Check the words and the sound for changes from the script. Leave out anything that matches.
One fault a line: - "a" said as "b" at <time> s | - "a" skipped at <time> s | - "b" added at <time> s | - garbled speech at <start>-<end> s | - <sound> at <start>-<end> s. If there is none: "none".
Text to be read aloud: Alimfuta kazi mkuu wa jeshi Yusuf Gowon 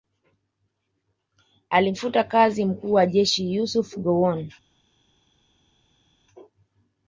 none